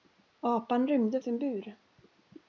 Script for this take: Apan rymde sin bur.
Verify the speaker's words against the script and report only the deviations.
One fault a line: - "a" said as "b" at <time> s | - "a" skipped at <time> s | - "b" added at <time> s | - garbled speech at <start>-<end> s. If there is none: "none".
none